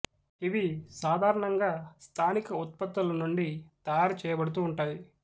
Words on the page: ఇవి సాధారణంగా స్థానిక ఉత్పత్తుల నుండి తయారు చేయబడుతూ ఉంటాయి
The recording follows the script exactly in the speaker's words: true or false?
true